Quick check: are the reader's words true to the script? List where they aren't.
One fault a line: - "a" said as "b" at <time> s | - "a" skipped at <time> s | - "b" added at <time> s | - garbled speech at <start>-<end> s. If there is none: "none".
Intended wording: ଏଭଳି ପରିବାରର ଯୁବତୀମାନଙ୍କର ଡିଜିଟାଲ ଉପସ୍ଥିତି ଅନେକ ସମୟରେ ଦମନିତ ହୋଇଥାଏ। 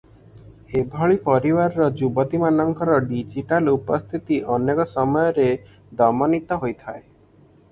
none